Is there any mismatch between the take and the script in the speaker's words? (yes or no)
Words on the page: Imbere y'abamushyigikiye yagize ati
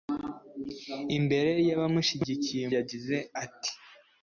no